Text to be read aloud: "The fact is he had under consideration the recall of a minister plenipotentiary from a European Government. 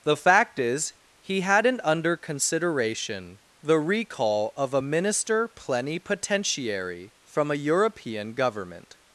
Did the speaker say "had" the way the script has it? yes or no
no